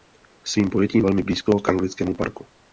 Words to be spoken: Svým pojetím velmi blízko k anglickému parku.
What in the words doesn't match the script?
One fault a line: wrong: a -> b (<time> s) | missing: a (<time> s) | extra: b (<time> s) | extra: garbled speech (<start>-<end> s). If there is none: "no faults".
no faults